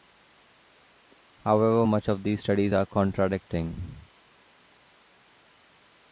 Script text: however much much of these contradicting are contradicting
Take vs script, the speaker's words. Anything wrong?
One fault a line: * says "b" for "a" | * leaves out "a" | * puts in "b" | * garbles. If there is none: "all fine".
* leaves out "much"
* says "studies" for "contradicting"